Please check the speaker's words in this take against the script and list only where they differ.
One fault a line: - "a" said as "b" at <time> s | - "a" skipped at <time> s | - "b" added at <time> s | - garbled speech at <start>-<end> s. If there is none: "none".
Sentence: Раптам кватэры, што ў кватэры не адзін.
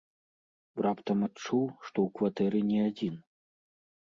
- "кватэры" said as "адчуў" at 1.2 s